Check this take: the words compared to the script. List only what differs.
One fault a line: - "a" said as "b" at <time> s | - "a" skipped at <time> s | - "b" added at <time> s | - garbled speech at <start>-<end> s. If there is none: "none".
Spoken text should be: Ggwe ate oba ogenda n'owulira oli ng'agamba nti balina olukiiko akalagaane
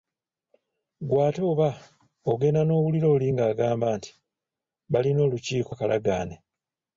none